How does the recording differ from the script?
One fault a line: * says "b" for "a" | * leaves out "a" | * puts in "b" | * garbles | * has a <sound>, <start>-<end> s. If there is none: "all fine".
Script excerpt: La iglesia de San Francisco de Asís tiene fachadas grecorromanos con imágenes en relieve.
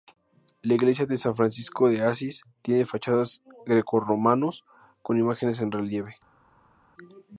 all fine